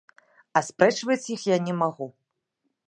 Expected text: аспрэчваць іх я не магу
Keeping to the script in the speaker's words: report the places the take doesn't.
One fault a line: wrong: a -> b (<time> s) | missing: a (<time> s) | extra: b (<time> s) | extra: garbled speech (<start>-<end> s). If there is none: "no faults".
no faults